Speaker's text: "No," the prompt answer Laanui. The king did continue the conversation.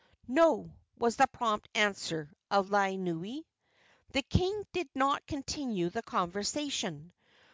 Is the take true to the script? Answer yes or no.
no